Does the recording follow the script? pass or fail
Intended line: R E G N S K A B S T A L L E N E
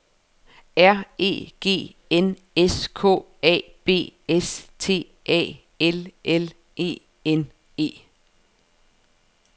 pass